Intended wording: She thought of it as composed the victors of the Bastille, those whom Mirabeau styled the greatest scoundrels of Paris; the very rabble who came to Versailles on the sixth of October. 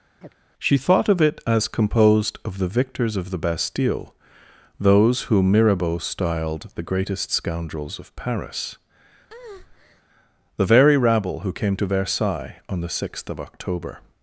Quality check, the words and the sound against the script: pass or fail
fail